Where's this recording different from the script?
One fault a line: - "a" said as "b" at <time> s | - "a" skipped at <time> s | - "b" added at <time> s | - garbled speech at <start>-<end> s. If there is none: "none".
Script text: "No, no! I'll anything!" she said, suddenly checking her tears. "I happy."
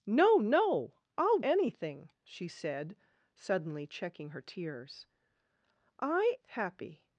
none